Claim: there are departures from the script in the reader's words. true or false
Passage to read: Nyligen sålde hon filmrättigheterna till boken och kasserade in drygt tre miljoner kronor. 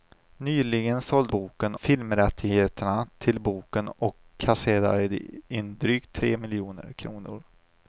true